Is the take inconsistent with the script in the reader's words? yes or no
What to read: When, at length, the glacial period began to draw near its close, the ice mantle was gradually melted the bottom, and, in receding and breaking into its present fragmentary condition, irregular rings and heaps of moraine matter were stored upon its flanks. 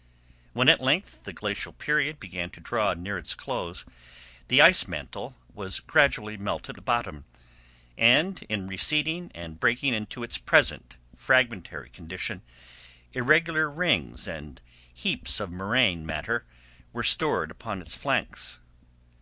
no